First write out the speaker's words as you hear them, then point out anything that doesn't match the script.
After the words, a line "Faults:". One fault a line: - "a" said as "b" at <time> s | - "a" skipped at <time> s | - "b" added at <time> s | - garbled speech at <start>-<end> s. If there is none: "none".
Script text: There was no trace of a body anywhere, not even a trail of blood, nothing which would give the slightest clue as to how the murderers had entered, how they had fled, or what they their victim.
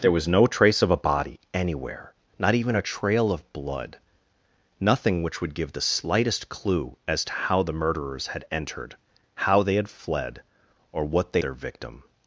There was no trace of a body anywhere, not even a trail of blood, nothing which would give the slightest clue as to how the murderers had entered, how they had fled, or what they their victim.
Faults:
none